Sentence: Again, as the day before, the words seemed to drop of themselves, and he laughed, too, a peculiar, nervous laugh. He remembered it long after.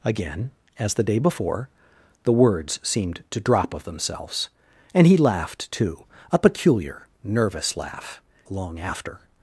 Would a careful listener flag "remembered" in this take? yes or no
yes